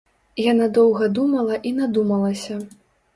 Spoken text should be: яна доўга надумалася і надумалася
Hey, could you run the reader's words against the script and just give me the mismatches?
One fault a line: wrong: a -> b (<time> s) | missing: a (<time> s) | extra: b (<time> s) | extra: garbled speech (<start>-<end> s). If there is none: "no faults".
wrong: надумалася -> думала (1.2 s)